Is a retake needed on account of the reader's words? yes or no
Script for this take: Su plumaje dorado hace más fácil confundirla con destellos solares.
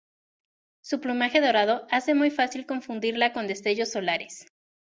yes